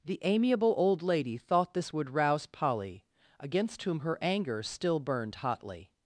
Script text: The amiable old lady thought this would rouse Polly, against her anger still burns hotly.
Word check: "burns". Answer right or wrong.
wrong